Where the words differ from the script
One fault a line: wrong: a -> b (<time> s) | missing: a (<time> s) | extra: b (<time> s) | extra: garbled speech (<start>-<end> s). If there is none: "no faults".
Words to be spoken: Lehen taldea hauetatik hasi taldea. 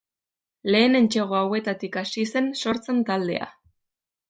wrong: taldea -> entsegu (1.0 s)
extra: zen sortzen (2.3 s)